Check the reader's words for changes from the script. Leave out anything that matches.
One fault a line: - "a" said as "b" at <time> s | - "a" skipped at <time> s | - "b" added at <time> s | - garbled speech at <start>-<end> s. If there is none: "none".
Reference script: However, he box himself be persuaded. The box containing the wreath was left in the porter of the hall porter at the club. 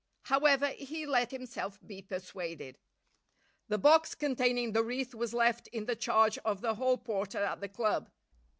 - "box" said as "let" at 1.1 s
- "porter" said as "charge" at 6.0 s